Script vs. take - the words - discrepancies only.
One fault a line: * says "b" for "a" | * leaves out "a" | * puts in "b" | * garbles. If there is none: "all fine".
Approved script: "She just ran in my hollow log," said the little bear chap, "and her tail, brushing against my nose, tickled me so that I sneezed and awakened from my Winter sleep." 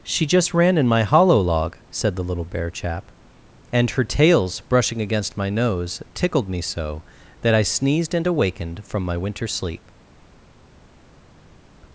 * says "tails" for "tail"